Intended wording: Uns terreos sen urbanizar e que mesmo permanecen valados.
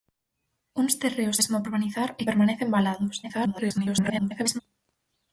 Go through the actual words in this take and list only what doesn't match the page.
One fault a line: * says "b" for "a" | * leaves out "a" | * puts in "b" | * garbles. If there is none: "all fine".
* says "mesmo" for "sen"
* leaves out "que mesmo"
* garbles